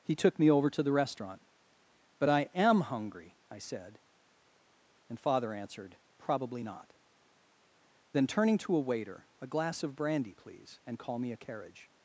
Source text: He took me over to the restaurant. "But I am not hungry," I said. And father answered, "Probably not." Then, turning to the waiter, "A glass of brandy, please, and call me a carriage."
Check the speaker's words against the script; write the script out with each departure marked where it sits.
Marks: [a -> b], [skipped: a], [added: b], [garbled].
He took me over to the restaurant. "But I am [skipped: not] hungry," I said. And father answered, "Probably not." Then, turning to [the -> a] waiter, "A glass of brandy, please, and call me a carriage."